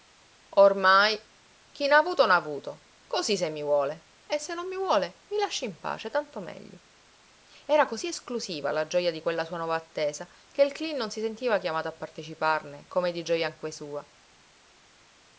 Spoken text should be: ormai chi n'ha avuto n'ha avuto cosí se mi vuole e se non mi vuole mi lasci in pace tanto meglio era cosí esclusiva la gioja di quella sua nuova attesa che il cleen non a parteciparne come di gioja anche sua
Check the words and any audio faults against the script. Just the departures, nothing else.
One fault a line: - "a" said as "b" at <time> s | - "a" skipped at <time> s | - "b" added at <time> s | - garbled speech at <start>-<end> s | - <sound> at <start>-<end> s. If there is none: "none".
- "si sentiva chiamato" added at 11.1 s